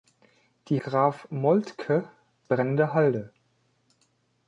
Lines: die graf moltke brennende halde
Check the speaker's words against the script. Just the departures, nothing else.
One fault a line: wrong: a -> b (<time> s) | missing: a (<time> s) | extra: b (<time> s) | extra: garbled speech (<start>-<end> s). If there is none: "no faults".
no faults